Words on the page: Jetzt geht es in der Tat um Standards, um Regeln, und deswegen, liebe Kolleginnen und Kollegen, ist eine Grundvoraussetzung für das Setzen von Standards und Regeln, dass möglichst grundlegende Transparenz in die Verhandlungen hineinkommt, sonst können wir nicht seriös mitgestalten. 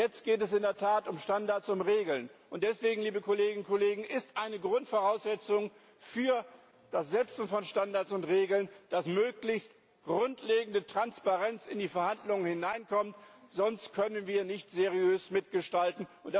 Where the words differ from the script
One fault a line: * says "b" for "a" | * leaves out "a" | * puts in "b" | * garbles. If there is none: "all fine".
all fine